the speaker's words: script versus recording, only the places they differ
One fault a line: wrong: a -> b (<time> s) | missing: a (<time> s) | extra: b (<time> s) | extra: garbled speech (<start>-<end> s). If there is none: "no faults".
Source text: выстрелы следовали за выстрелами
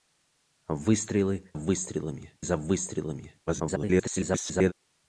wrong: следовали -> выстрелами (1.6 s)
extra: garbled speech (3.5-4.7 s)